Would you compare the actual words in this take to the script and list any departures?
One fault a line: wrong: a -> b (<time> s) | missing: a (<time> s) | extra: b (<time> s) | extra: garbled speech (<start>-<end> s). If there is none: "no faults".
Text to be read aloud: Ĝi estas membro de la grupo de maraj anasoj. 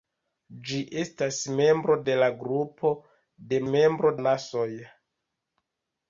wrong: maraj -> membro (3.7 s)